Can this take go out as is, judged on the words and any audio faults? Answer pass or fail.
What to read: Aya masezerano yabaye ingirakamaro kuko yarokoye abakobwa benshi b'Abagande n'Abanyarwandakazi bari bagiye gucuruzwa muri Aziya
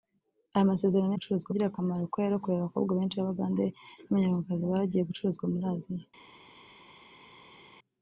fail